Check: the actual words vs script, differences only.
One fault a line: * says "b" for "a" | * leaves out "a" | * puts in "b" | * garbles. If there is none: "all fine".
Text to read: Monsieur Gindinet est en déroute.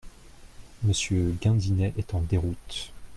all fine